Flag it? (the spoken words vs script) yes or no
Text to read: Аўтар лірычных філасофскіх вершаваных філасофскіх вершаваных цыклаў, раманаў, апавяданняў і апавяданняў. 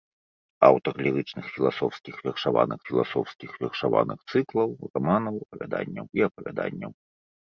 no